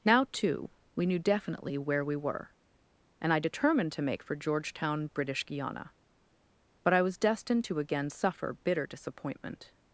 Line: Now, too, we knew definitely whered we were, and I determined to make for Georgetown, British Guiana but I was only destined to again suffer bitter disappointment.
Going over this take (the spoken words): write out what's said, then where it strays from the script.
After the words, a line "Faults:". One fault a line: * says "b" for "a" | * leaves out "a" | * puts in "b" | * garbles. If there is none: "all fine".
Now, too, we knew definitely where we were, and I determined to make for Georgetown, British Guiana but I was destined to again suffer bitter disappointment.
Faults:
* says "where" for "whered"
* leaves out "only"